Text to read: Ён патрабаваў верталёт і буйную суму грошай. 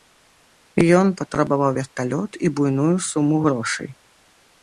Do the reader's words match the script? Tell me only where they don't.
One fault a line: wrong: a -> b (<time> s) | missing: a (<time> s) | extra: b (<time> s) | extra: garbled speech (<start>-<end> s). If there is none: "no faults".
no faults